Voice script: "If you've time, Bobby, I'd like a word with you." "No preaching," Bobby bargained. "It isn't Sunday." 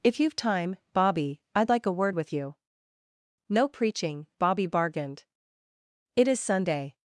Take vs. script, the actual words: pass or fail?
fail